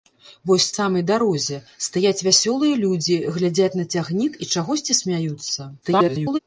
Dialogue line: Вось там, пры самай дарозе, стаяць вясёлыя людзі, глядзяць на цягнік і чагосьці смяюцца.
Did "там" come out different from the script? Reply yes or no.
yes